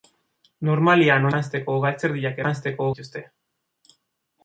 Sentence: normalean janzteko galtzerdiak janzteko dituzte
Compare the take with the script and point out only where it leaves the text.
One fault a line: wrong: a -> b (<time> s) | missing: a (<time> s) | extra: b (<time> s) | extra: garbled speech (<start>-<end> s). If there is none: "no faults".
no faults